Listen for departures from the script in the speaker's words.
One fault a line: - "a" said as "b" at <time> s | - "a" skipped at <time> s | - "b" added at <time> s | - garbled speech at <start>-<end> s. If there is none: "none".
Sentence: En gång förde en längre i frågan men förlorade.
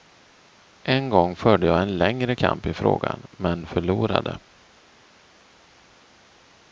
- "jag" added at 1.7 s
- "kamp" added at 2.3 s